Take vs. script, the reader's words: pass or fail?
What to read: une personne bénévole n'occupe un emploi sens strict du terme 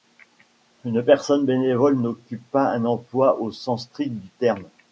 fail